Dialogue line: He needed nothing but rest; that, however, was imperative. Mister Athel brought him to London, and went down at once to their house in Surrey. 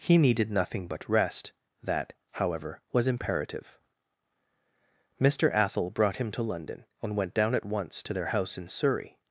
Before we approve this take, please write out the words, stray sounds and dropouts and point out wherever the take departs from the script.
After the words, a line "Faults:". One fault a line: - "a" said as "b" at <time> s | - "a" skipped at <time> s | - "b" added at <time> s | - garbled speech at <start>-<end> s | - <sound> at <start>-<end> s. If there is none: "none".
He needed nothing but rest; that, however, was imperative. Mister Athel brought him to London, and went down at once to their house in Surrey.
Faults:
none